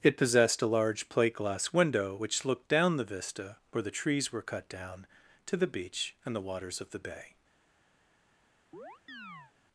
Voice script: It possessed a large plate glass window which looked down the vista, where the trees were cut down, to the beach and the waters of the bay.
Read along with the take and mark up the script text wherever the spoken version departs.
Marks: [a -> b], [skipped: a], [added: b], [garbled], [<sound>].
It possessed a large plate glass window which looked down the vista, where the trees were cut down, to the beach and the waters of the bay. [chirp]